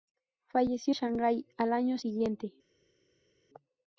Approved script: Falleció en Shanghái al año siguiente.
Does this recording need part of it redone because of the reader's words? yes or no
yes